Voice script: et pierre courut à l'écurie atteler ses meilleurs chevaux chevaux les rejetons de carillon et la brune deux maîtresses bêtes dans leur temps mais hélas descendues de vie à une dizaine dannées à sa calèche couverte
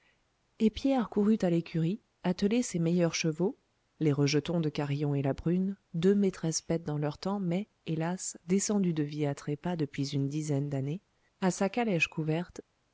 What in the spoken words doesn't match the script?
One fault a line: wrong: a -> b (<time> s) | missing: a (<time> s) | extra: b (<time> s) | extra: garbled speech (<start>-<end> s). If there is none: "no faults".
missing: chevaux (3.5 s)
extra: trépas depuis (9.3 s)